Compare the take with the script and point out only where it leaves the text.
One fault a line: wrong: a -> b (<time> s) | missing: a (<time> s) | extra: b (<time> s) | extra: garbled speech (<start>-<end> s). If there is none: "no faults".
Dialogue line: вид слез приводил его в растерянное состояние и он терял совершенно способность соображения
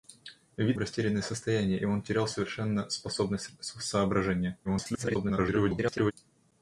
missing: слез приводил его (0.8 s)
extra: garbled speech (4.6-6.1 s)